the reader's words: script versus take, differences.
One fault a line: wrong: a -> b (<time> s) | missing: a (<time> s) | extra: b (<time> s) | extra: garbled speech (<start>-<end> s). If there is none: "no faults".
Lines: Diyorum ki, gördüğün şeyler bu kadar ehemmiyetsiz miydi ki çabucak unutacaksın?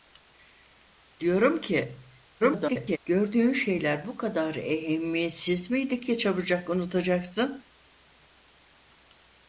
extra: garbled speech (2.4-3.0 s)